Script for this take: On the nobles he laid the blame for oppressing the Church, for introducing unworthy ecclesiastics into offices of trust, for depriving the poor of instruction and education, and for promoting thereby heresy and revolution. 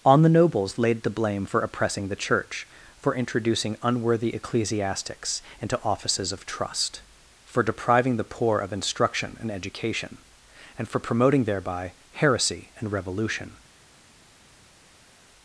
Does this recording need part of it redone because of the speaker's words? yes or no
yes